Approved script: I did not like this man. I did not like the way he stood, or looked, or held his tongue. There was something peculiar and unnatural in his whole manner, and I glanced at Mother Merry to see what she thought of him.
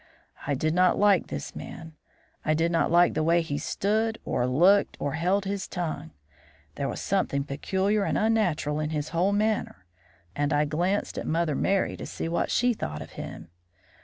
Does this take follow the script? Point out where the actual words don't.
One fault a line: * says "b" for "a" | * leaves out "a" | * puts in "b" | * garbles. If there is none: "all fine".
all fine